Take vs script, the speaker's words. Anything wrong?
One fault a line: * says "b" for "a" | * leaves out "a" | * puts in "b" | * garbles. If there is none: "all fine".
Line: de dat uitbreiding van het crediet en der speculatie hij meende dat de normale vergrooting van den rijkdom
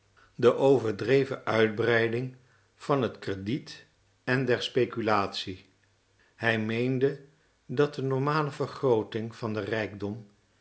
* says "overdreven" for "dat"